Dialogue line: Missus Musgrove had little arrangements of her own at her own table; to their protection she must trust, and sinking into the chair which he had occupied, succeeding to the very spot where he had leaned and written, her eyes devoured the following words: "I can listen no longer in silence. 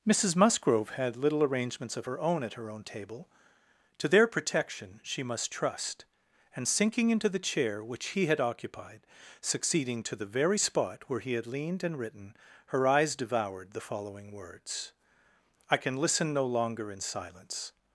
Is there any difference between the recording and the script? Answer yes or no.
no